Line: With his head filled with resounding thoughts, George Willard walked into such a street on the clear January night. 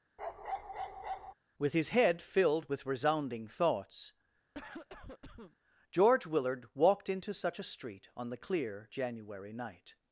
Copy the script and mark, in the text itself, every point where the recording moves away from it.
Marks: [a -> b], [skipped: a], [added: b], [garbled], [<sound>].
[bark] With his head filled with resounding thoughts, [cough] George Willard walked into such a street on the clear January night.